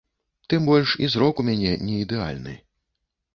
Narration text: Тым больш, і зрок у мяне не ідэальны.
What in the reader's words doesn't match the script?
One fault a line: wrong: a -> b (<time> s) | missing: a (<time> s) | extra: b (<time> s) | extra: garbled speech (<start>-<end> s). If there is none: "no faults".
no faults